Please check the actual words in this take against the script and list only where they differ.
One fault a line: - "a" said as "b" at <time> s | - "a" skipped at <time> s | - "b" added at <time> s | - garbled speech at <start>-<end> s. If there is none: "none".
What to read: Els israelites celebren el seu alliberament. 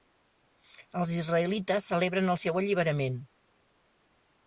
none